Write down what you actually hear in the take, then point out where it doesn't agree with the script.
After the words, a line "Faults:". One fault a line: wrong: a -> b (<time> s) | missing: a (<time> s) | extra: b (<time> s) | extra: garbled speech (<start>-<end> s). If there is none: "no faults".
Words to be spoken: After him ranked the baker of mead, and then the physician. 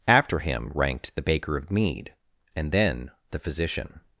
After him ranked the baker of mead, and then the physician.
Faults:
no faults